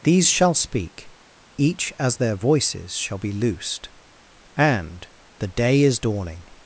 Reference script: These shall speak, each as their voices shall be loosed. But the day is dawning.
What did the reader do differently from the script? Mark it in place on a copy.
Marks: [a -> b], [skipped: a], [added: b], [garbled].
These shall speak, each as their voices shall be loosed. [But -> And] the day is dawning.